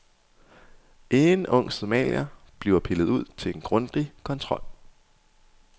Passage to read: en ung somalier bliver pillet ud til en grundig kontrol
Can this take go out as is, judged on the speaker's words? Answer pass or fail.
pass